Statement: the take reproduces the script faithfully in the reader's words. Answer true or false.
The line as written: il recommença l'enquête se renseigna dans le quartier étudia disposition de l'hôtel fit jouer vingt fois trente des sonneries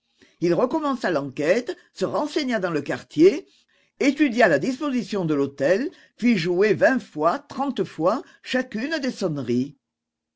false